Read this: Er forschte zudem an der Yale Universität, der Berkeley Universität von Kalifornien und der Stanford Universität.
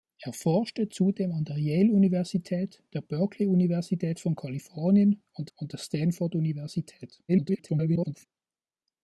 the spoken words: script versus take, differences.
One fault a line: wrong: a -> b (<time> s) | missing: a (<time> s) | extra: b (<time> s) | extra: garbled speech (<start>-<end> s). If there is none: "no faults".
extra: und (5.6 s)
extra: garbled speech (7.3-8.3 s)